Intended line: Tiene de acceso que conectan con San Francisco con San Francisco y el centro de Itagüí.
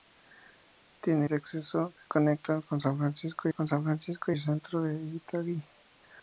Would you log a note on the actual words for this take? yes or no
no